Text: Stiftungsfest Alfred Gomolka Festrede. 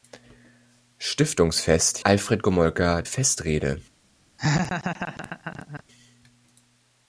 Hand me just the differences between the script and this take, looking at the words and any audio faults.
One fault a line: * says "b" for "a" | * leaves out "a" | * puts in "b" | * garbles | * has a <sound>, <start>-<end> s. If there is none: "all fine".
* has a laugh, 4.4-5.8 s